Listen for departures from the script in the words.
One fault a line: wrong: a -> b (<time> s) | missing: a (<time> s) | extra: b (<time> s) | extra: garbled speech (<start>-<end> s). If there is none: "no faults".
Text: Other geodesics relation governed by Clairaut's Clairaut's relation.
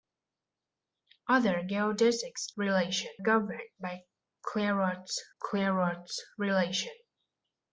no faults